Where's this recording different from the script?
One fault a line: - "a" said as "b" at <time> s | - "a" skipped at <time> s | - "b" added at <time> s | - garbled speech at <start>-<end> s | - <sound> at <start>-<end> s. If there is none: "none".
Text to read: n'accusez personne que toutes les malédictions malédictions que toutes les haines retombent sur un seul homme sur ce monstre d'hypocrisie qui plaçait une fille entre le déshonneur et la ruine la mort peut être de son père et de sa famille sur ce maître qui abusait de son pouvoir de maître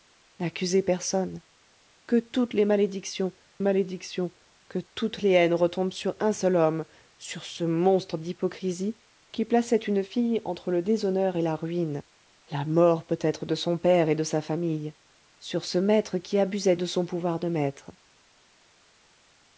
none